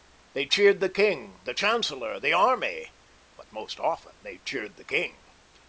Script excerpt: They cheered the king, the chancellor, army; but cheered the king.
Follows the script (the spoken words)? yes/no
no